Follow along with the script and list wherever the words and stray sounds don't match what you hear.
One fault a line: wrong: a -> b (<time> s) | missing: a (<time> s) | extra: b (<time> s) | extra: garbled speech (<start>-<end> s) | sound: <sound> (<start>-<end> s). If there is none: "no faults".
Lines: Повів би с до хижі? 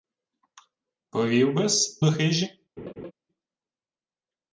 sound: laugh (2.8-3.1 s)